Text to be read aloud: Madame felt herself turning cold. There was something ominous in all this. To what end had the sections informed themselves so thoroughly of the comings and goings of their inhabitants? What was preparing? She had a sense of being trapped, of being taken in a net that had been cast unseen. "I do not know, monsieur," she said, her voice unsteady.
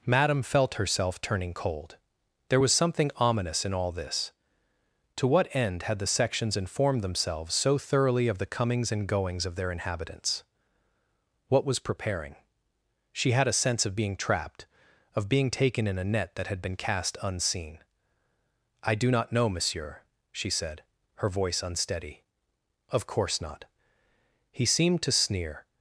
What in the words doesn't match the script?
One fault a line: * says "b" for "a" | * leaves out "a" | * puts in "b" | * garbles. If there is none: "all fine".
* puts in "Of course not He seemed to sneer"